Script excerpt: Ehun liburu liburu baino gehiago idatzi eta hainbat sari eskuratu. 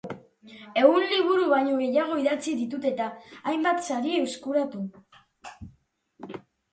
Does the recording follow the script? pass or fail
fail